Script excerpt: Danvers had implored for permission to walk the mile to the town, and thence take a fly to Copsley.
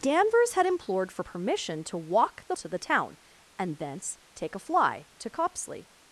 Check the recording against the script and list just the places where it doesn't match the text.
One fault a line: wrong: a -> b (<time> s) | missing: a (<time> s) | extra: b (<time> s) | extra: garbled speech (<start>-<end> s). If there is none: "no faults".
missing: mile (2.5 s)